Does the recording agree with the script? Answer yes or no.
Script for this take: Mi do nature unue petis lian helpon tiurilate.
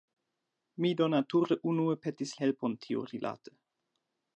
no